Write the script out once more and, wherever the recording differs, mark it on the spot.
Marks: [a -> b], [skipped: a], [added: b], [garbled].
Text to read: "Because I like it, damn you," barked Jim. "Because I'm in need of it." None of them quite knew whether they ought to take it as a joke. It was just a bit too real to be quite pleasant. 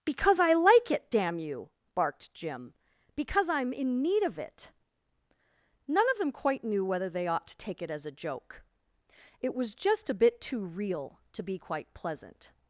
"Because I like it, damn you," barked Jim. "Because I'm in need of it." None of them quite knew whether they ought to take it as a joke. It was just a bit too real to be quite pleasant.